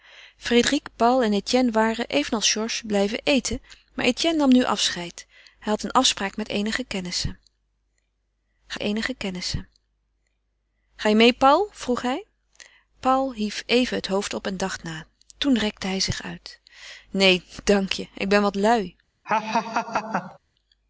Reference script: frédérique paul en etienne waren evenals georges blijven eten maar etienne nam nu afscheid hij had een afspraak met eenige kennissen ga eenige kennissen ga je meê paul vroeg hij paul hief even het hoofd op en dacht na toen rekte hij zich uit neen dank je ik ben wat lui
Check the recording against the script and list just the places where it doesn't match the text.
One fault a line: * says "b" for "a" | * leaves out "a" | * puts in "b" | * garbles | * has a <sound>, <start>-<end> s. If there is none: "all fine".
* has a laugh, 19.2-20.4 s